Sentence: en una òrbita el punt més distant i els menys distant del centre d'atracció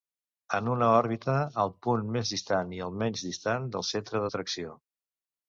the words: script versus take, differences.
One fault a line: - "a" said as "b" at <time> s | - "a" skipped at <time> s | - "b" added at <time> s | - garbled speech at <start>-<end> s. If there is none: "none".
- "els" said as "el" at 2.9 s